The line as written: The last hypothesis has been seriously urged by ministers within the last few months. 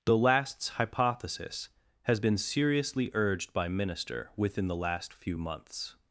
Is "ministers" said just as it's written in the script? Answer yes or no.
no